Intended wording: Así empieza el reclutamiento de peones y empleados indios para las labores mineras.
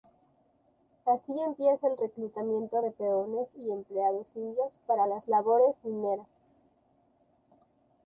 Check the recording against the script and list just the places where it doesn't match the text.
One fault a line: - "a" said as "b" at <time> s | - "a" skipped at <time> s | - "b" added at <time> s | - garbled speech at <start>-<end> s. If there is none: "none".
none